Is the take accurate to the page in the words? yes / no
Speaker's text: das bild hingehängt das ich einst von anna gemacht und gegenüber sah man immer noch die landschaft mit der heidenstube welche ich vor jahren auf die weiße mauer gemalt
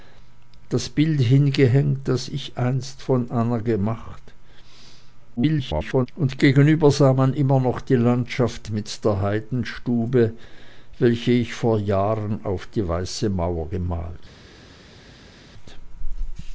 no